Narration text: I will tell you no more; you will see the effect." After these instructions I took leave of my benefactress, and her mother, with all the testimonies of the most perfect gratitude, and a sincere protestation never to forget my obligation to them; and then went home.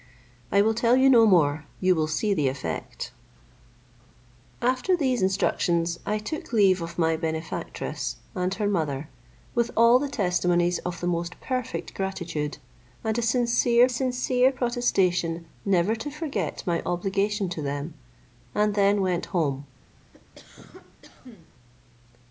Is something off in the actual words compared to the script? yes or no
yes